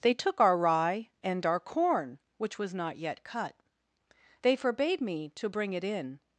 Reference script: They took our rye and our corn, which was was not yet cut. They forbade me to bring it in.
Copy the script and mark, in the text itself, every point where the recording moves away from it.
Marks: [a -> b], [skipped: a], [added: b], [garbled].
They took our rye and our corn, which was [skipped: was] not yet cut. They forbade me to bring it in.